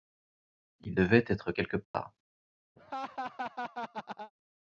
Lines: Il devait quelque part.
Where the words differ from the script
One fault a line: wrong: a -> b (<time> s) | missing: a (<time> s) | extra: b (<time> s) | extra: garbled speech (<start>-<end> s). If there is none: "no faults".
extra: être (1.3 s)